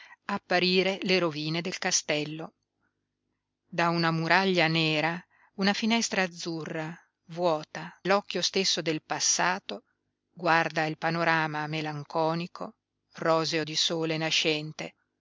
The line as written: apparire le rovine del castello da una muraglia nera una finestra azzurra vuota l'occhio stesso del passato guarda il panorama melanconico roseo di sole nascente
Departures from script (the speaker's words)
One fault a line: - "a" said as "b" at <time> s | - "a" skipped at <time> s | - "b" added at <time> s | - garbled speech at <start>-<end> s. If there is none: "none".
none